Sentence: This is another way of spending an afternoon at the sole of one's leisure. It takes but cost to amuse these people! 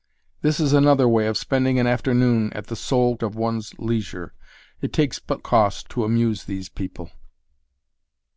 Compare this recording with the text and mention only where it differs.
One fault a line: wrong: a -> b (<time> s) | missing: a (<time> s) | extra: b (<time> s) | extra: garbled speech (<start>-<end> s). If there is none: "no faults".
no faults